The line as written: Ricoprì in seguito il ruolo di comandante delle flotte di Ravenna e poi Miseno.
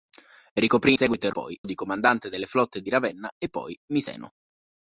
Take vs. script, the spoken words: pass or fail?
fail